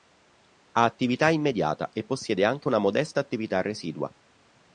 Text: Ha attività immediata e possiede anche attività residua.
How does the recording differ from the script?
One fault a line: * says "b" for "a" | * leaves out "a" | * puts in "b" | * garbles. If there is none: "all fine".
* puts in "una modesta"